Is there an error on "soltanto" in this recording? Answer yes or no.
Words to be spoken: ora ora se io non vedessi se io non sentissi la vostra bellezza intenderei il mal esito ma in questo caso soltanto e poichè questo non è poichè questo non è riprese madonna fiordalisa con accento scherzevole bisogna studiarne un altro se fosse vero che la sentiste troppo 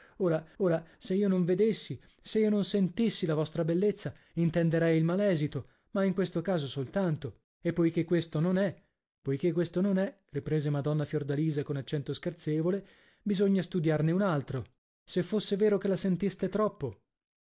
no